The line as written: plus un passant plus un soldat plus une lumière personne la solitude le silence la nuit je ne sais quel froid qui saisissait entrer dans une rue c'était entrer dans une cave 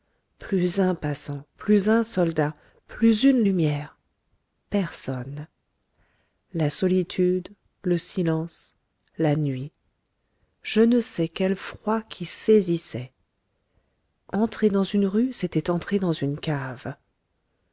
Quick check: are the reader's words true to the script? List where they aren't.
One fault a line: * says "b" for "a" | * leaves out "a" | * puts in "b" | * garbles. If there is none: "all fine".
all fine